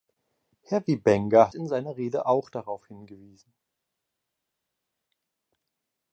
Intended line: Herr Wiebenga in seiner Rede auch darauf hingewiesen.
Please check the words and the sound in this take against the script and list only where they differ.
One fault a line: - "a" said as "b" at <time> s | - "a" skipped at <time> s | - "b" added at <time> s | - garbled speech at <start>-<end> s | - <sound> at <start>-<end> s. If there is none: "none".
none